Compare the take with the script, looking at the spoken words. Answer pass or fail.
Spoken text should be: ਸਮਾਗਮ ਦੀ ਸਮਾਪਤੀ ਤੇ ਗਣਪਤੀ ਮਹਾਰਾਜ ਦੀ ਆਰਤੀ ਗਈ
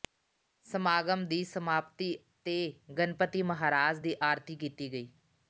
fail